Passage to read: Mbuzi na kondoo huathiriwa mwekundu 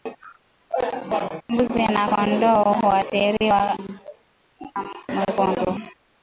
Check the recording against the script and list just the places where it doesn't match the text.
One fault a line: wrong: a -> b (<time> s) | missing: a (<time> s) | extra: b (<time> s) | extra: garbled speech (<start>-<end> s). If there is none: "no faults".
no faults